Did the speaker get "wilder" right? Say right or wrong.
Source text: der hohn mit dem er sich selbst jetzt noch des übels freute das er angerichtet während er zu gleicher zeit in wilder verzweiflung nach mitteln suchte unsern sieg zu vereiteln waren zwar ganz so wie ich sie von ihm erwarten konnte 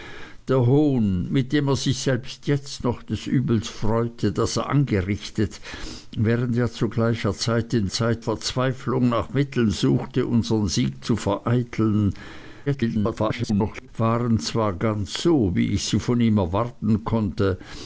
wrong